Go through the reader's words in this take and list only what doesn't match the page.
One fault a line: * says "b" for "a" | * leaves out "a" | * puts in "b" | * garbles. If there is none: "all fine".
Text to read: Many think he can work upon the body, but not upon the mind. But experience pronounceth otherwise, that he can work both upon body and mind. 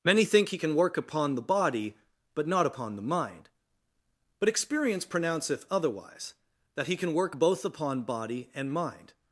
all fine